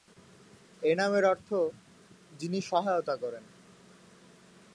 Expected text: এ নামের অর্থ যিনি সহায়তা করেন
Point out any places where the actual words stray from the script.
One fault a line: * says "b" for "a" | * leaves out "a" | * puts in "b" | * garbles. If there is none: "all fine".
all fine